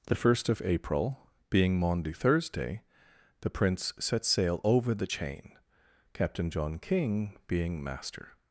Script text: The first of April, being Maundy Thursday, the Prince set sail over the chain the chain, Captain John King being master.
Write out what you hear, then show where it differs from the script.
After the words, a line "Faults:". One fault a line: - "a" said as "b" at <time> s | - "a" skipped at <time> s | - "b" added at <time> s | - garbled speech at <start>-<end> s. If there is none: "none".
The first of April, being Maundy Thursday, the Prince set sail over the chain, Captain John King being master.
Faults:
- "the chain" skipped at 5.6 s